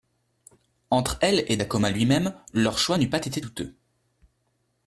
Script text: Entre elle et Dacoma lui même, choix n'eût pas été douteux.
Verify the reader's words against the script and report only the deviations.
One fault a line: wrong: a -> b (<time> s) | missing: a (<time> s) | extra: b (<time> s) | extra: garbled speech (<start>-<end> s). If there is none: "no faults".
extra: leur (2.5 s)